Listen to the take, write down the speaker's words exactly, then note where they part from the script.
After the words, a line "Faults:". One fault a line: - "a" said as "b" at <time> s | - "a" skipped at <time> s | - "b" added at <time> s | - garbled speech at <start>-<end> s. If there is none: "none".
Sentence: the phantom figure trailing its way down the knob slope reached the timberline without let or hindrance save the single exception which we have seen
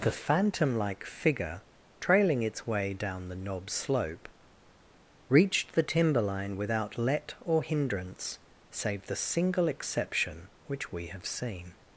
the phantom like figure trailing its way down the knob slope reached the timberline without let or hindrance save the single exception which we have seen
Faults:
- "like" added at 0.8 s